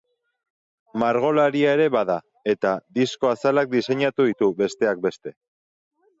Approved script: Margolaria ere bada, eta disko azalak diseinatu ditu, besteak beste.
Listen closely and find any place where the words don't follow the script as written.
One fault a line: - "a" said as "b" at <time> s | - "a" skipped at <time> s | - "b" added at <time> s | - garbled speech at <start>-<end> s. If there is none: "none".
none